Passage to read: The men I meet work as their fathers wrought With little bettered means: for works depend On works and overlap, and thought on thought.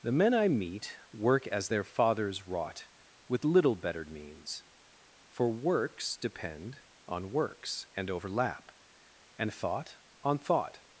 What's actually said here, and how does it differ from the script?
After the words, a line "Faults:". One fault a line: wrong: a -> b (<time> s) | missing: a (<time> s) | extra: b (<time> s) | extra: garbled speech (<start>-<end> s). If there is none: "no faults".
The men I meet work as their fathers wrought With little bettered means: for works depend On works and overlap, and thought on thought.
Faults:
no faults